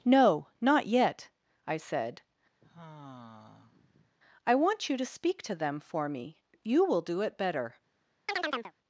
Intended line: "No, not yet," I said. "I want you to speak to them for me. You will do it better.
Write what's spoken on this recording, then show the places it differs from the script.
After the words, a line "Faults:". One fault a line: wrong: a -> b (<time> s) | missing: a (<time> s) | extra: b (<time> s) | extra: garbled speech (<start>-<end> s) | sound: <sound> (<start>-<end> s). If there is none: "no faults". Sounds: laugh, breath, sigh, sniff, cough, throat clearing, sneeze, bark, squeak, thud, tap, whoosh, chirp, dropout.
"No, not yet," I said. "I want you to speak to them for me. You will do it better.
Faults:
sound: sigh (2.6-4.1 s)
sound: chirp (8.3-8.7 s)